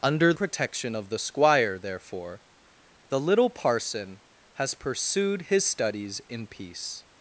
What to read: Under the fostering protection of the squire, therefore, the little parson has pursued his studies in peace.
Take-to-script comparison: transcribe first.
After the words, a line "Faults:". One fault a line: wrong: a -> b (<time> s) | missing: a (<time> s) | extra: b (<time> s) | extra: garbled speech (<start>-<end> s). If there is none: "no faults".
Under protection of the squire, therefore, the little parson has pursued his studies in peace.
Faults:
missing: the fostering (0.3 s)